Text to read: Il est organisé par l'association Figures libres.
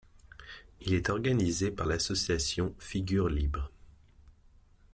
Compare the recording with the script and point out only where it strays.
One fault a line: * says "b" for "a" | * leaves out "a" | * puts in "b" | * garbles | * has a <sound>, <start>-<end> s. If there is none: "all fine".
all fine